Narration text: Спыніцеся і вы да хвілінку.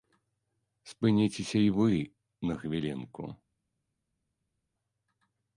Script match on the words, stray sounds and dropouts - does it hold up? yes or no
no